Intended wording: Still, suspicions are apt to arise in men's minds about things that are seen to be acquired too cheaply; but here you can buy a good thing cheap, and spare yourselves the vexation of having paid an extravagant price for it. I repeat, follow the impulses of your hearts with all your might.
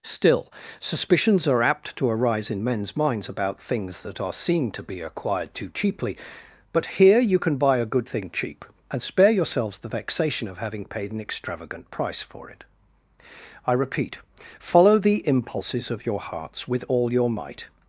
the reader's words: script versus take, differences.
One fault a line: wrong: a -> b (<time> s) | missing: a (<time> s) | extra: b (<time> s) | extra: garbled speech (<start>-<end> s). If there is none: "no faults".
no faults